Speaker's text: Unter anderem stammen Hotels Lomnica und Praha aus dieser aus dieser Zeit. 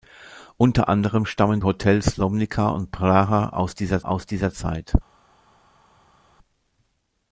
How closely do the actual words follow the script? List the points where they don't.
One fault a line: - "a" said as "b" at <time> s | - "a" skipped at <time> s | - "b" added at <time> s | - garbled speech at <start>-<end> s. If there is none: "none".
none